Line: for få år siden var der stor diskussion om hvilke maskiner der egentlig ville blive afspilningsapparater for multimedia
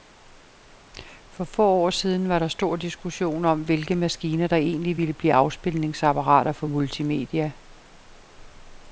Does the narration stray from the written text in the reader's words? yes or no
no